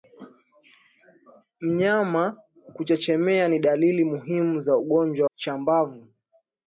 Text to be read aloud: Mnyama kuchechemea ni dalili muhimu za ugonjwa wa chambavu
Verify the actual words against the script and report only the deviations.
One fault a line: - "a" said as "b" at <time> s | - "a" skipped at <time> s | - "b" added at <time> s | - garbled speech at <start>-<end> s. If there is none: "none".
- "wa" skipped at 5.3 s